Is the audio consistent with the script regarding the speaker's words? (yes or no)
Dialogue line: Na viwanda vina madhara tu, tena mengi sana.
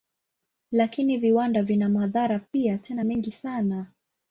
no